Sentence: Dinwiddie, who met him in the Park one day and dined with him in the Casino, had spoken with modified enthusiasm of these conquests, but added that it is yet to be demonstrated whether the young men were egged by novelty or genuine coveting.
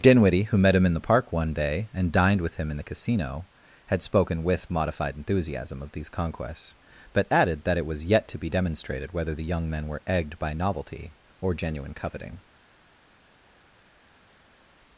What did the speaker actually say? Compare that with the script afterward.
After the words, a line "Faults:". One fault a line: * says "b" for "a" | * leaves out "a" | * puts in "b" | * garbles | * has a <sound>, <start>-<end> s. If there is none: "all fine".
Dinwiddie, who met him in the Park one day and dined with him in the Casino, had spoken with modified enthusiasm of these conquests, but added that it was yet to be demonstrated whether the young men were egged by novelty or genuine coveting.
Faults:
* says "was" for "is"